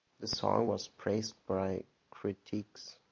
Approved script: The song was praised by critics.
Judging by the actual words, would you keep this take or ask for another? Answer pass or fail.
pass